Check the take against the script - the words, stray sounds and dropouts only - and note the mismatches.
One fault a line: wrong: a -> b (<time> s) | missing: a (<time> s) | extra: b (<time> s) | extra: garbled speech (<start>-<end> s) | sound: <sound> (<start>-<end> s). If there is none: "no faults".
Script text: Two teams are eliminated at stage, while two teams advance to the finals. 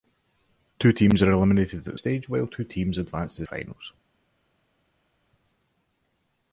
no faults